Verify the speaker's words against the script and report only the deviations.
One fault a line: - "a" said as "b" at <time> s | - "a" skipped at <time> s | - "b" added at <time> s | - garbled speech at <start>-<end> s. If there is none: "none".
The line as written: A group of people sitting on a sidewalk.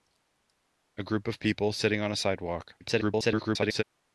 - garbled speech at 2.8-3.8 s